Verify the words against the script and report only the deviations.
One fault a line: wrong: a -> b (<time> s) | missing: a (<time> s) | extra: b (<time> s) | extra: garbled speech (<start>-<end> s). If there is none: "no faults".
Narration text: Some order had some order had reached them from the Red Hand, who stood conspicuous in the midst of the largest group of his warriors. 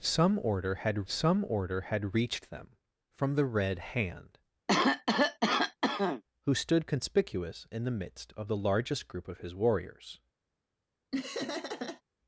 no faults